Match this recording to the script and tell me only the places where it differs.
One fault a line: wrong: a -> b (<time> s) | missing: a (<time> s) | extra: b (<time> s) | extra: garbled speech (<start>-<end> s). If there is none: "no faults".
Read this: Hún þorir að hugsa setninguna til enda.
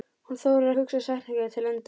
no faults